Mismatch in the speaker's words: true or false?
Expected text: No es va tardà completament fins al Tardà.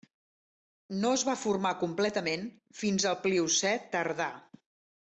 true